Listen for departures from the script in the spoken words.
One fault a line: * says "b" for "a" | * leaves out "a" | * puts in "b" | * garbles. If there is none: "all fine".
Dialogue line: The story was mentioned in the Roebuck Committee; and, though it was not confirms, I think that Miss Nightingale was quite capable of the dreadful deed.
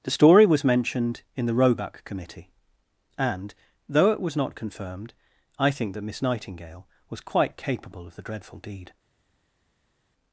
* says "confirmed" for "confirms"